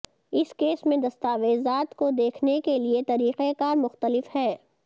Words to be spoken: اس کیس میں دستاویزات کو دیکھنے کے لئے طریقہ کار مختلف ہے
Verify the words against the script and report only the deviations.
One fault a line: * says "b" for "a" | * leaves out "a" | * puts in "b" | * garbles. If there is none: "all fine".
all fine